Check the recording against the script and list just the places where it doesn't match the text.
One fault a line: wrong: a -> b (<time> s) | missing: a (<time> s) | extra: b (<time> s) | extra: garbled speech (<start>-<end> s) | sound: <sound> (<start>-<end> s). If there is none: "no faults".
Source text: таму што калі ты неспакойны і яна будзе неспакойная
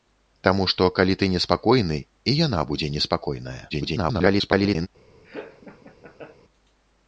extra: garbled speech (3.7-4.9 s)
sound: laugh (5.2-6.4 s)